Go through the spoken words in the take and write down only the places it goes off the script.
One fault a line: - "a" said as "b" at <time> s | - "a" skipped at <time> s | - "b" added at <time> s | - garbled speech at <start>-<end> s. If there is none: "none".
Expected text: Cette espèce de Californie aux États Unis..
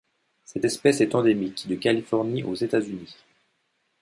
- "est endémique" added at 1.0 s